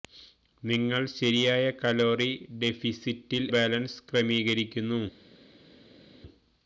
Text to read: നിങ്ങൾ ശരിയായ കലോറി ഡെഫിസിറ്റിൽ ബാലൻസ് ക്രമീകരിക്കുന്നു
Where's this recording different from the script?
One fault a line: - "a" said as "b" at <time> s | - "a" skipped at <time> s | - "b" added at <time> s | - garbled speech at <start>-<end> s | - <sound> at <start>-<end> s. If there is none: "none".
none